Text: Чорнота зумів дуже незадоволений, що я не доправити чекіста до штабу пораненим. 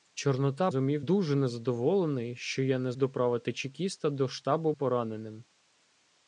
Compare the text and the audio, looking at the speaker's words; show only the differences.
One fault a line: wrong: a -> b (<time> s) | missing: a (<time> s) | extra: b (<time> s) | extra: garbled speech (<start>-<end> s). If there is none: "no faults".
no faults